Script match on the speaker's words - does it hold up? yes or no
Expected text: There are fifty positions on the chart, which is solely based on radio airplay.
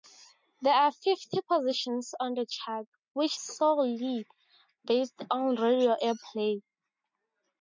no